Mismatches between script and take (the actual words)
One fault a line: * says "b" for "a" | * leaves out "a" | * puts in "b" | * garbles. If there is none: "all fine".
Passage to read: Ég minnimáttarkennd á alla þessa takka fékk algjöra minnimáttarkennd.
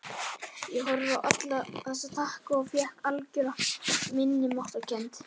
* says "horfði" for "minnimáttarkennd"
* puts in "og"